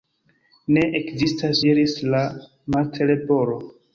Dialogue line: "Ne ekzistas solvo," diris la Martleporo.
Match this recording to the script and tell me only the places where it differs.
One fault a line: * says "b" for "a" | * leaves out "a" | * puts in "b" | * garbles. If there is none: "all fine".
* leaves out "solvo"